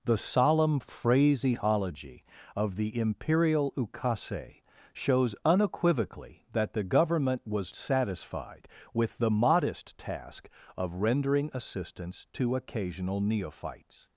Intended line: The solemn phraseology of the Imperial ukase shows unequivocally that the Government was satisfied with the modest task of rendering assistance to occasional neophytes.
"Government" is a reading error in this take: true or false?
false